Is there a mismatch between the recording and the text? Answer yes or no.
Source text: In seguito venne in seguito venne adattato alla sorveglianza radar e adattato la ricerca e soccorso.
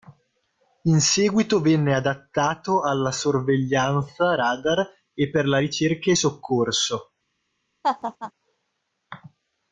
yes